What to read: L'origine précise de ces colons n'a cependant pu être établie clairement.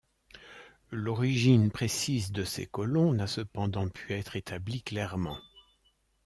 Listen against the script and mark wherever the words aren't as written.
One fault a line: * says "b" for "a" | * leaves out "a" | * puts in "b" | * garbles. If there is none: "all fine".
all fine